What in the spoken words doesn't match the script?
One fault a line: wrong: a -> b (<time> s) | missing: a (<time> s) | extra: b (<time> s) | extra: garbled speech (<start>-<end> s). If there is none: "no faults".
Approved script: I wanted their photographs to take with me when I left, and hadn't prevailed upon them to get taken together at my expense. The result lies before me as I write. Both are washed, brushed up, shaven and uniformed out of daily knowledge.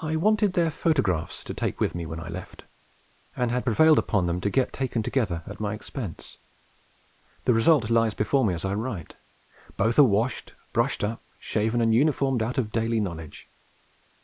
wrong: hadn't -> had (3.5 s)